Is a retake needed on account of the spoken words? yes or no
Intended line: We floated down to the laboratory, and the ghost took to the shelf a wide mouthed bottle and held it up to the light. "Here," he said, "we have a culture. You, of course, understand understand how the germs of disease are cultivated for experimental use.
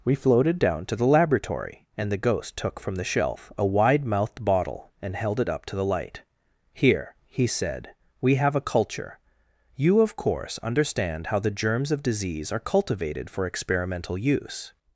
yes